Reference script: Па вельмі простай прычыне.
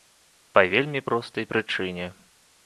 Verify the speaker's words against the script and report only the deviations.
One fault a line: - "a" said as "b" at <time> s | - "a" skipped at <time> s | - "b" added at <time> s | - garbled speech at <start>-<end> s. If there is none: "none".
none